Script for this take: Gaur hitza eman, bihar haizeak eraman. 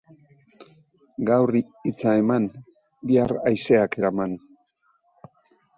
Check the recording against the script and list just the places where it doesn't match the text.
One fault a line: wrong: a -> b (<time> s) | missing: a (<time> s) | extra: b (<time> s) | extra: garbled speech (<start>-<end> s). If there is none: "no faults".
no faults